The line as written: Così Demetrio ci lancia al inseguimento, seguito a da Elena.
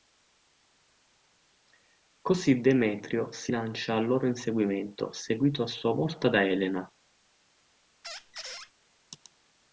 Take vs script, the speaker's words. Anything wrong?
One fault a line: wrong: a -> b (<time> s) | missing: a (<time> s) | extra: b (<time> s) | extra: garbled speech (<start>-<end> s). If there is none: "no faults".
wrong: ci -> si (3.3 s)
extra: loro (4.0 s)
extra: sua volta (5.7 s)